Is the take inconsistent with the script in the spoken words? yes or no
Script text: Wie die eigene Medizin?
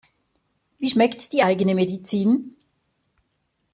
yes